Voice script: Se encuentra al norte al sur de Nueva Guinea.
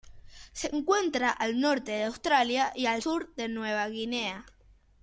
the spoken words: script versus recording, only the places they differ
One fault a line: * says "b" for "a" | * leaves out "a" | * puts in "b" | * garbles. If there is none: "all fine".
* puts in "de Australia y"